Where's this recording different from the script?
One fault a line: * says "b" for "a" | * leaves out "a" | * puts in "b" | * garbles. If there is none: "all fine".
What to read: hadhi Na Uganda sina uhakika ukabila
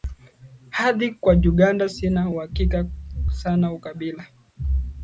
* says "Kwa" for "Na"
* puts in "sana"